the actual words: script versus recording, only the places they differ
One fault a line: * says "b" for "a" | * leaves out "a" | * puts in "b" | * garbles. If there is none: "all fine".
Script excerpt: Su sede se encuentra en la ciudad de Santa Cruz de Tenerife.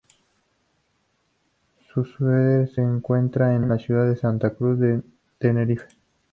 * puts in "en"